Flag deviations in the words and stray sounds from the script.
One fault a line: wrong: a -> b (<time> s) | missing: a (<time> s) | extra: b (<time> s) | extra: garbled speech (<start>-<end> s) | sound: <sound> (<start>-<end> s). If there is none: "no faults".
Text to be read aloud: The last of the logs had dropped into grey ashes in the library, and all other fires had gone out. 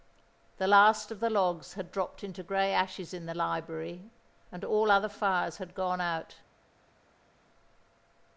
no faults